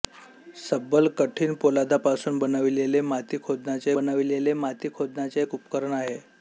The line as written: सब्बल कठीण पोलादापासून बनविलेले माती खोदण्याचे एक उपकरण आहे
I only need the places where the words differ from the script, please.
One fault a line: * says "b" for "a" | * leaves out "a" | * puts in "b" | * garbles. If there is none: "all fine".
* puts in "बनविलेले माती खोदण्याचे"